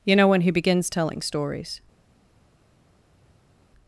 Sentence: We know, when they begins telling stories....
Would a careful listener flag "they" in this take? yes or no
yes